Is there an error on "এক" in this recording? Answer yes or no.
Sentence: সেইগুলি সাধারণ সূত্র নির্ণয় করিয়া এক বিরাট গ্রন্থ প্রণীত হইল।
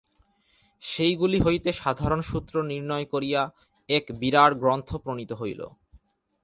no